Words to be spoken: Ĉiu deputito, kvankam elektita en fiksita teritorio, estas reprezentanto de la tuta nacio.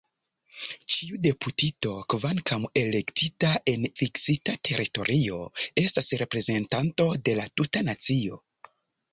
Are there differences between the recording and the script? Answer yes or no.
no